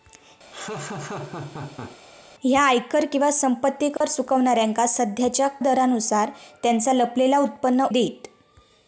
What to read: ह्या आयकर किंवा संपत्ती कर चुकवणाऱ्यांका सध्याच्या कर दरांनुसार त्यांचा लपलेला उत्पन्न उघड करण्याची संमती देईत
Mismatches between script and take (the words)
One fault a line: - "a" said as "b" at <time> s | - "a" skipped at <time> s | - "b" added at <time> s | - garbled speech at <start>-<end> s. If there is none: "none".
- "कर" skipped at 5.5 s
- "उघड करण्याची संमती" skipped at 7.9 s